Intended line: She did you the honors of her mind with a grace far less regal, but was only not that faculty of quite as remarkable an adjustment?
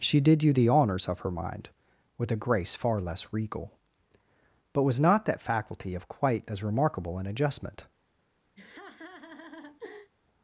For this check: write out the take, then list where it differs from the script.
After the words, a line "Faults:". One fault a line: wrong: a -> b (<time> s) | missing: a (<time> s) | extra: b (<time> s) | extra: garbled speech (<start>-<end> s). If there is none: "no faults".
She did you the honors of her mind with a grace far less regal, but was not that faculty of quite as remarkable an adjustment?
Faults:
missing: only (5.0 s)